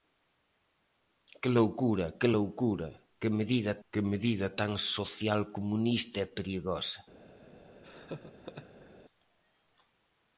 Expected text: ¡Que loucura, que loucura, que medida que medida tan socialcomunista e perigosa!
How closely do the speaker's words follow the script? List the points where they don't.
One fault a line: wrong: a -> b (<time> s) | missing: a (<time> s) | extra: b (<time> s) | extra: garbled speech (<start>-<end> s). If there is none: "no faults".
no faults